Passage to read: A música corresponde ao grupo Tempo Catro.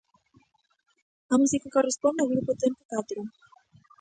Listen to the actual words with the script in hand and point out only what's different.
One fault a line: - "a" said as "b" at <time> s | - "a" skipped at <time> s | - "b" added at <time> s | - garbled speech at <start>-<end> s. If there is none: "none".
none